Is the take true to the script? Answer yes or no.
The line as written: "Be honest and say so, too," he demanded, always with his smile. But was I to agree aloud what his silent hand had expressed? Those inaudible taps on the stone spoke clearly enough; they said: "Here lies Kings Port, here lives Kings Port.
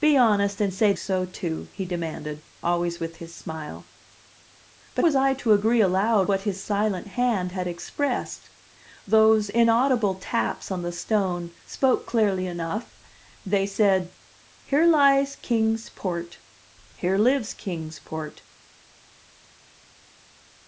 yes